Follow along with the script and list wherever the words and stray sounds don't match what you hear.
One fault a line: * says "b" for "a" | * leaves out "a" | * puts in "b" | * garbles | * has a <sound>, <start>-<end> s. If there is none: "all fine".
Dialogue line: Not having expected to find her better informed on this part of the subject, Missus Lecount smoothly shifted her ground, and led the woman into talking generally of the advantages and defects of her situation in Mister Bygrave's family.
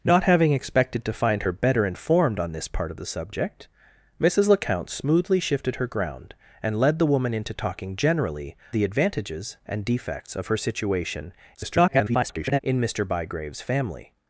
* leaves out "of"
* garbles